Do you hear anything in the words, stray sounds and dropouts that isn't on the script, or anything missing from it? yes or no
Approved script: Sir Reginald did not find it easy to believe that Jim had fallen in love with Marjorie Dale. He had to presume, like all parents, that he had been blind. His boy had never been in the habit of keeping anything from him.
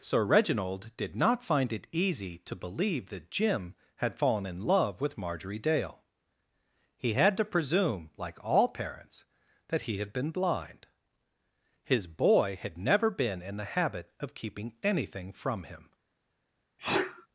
yes